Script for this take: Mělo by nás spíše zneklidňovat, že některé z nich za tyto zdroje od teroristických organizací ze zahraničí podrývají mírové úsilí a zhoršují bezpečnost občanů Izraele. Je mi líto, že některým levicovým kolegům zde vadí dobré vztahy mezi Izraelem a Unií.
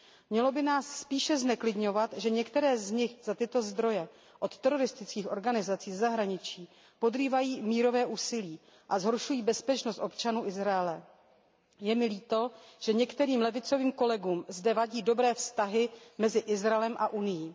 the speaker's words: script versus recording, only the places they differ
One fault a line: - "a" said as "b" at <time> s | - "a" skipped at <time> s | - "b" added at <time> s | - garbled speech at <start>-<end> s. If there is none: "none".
none